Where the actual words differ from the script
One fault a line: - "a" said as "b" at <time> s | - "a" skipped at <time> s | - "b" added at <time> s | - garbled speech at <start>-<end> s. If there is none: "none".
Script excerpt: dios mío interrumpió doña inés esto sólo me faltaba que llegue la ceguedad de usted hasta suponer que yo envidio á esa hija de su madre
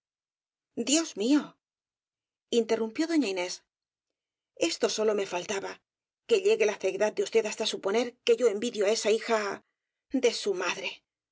none